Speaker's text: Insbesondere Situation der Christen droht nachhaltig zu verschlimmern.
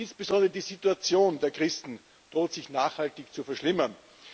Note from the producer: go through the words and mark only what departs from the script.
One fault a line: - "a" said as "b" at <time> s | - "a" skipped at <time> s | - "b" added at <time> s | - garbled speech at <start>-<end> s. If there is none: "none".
- "die" added at 0.5 s
- "sich" added at 2.5 s